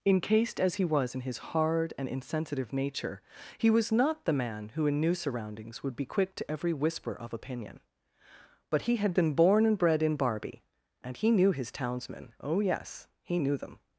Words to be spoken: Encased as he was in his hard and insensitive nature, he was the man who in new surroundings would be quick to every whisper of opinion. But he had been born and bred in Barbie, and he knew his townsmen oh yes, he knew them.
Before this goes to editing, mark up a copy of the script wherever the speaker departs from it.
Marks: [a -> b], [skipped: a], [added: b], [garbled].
Encased as he was in his hard and insensitive nature, he was [added: not] the man who in new surroundings would be quick to every whisper of opinion. But he had been born and bred in Barbie, and he knew his townsmen oh yes, he knew them.